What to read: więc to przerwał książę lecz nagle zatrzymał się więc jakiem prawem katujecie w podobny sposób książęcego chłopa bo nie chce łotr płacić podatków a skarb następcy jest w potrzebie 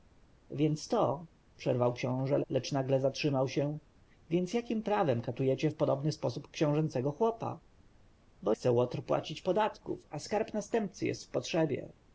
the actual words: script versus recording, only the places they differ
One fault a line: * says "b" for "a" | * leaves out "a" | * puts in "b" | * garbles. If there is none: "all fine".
* leaves out "nie"